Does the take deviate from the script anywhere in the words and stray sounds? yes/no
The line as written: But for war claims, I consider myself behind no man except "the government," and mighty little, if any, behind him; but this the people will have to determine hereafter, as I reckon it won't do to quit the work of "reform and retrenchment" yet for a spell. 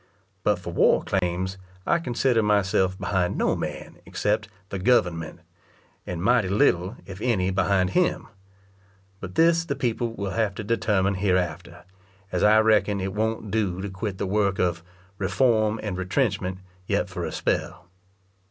yes